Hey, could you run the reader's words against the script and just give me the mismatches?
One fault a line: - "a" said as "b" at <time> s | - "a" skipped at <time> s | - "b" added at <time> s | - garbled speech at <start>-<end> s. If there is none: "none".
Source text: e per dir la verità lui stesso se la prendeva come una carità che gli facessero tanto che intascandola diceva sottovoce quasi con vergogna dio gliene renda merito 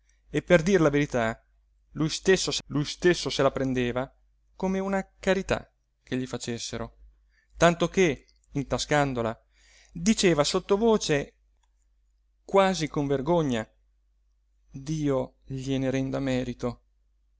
- "lui stesso se" added at 2.7 s